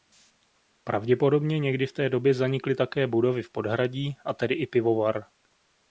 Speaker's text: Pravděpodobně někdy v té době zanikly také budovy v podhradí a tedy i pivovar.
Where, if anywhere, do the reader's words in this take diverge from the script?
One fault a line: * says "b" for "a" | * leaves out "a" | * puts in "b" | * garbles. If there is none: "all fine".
all fine